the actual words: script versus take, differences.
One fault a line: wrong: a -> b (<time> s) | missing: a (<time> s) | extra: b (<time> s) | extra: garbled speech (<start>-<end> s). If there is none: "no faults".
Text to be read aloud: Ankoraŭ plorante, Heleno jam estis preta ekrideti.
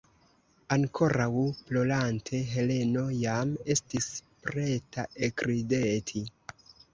no faults